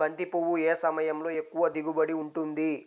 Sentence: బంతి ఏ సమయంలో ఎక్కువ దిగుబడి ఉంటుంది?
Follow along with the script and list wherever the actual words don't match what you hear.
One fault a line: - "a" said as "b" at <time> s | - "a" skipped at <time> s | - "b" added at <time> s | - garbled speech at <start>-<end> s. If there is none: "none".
- "పువ్వు" added at 0.2 s